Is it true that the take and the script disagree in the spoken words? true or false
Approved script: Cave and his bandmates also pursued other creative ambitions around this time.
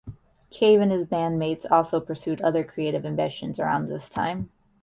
false